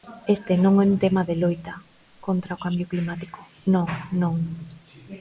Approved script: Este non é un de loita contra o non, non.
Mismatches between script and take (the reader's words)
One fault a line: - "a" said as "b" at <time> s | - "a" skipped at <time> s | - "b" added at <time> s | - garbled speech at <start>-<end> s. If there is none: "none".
- "tema" added at 1.0 s
- "cambio climático" added at 2.6 s